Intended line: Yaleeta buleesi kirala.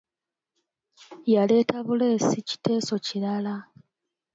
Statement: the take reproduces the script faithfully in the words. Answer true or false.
false